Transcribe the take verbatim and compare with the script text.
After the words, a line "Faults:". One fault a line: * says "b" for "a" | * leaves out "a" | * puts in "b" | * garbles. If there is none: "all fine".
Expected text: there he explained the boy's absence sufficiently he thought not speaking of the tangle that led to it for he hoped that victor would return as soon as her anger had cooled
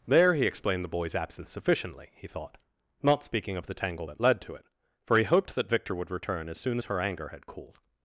there he explained the boy's absence sufficiently he thought not speaking of the tangle that led to it for he hoped that victor would return as soon as her anger had cooled
Faults:
all fine